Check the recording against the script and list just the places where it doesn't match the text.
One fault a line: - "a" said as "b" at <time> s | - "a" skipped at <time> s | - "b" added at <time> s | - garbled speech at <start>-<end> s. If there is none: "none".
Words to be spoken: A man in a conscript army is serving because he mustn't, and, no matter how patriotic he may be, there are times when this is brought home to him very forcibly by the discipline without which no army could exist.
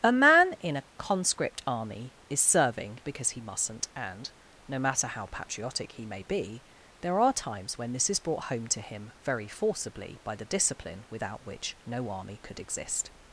none